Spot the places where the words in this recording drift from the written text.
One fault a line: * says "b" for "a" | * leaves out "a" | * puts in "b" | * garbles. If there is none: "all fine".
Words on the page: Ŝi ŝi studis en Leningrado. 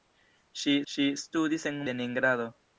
all fine